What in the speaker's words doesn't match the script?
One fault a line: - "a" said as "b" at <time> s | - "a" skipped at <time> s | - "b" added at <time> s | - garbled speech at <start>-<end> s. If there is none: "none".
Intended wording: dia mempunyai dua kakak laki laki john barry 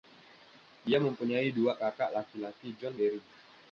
none